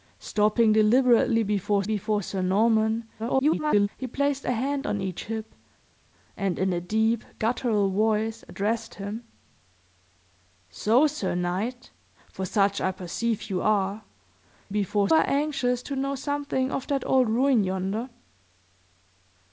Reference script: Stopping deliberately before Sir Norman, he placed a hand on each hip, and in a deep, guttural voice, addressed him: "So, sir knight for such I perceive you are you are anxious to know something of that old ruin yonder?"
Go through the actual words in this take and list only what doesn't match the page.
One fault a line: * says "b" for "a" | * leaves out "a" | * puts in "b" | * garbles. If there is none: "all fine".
* puts in "before"
* garbles
* says "before" for "you"